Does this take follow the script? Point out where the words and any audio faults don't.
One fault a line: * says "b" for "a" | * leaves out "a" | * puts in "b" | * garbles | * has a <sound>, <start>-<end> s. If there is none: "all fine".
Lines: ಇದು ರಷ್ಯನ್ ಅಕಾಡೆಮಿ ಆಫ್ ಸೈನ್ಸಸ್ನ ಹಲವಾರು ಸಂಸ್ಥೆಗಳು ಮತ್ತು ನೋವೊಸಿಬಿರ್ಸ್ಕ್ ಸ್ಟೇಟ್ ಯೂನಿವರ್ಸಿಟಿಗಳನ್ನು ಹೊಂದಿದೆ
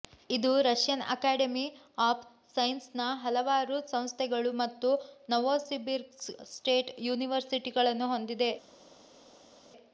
all fine